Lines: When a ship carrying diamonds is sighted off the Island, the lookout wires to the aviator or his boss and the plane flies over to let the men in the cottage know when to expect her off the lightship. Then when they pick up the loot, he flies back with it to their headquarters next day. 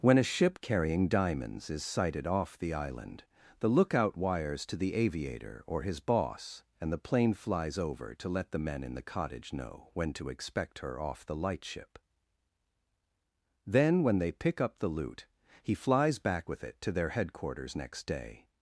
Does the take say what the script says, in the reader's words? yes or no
yes